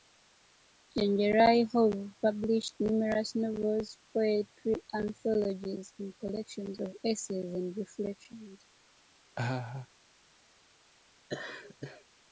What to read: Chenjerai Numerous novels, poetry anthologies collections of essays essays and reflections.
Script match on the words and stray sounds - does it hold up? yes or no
no